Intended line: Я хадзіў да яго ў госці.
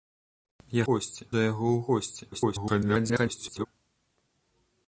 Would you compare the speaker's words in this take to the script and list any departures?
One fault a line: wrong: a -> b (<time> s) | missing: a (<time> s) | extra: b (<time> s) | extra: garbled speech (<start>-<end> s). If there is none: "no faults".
wrong: хадзіў -> госці (0.9 s)
extra: garbled speech (2.3-3.7 s)